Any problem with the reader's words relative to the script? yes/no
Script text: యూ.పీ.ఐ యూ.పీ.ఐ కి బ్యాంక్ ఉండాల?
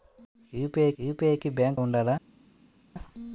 no